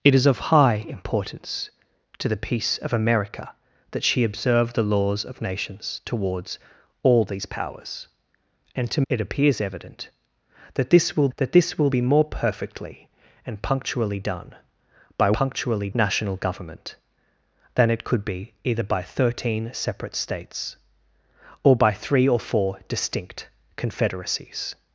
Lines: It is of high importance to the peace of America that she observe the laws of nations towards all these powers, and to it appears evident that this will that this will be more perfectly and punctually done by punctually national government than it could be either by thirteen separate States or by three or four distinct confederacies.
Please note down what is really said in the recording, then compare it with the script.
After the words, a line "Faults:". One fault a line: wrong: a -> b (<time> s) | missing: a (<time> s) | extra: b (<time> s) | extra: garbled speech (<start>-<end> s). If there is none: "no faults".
It is of high importance to the peace of America that she observe the laws of nations towards all these powers, and to it appears evident that this will that this will be more perfectly and punctually done by punctually national government than it could be either by thirteen separate States or by three or four distinct confederacies.
Faults:
no faults